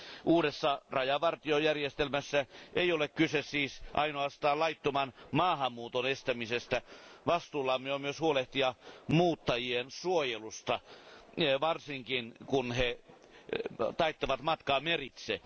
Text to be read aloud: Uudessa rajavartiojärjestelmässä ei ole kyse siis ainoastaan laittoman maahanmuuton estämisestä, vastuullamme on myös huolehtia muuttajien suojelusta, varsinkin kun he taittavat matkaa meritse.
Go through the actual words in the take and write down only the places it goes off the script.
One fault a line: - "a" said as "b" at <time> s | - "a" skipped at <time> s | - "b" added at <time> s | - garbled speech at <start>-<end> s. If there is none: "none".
none